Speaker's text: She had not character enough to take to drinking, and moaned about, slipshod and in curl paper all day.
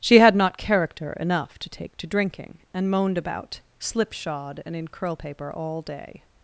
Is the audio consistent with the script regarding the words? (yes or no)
yes